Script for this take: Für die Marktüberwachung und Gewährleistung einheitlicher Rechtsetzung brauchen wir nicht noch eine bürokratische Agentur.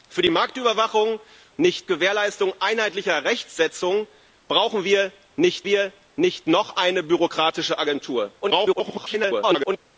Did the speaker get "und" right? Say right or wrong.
wrong